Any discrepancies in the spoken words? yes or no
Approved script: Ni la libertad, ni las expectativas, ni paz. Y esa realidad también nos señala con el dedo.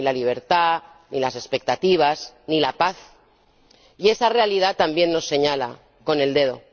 yes